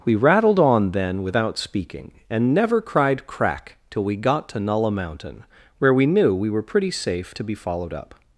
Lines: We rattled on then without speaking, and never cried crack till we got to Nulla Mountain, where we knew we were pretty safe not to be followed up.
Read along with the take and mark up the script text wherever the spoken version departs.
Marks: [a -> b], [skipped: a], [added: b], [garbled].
We rattled on then without speaking, and never cried crack till we got to Nulla Mountain, where we knew we were pretty safe [skipped: not] to be followed up.